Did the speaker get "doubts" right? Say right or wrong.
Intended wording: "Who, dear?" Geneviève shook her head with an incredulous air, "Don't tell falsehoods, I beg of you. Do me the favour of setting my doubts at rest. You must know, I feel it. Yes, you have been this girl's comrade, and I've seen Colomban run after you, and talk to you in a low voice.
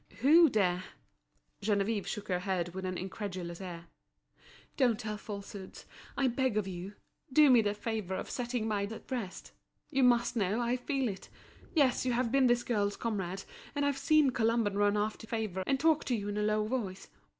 wrong